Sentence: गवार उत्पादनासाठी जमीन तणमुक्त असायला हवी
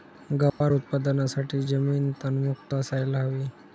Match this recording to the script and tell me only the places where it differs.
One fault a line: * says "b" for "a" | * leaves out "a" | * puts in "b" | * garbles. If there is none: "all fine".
all fine